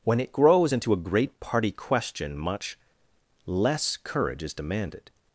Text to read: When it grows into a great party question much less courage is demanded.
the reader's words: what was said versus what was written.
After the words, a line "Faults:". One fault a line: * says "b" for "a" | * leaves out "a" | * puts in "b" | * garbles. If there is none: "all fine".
When it grows into a great party question much less courage is demanded.
Faults:
all fine